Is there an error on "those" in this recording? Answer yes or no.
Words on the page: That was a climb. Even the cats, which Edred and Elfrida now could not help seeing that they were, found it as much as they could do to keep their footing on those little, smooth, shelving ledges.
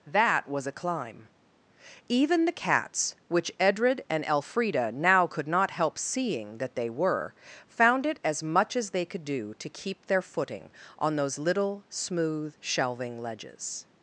no